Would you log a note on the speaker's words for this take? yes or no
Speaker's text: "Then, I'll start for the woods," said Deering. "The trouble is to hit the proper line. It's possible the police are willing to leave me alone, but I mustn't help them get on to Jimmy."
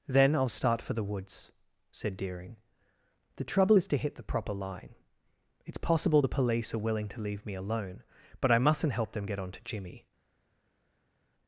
no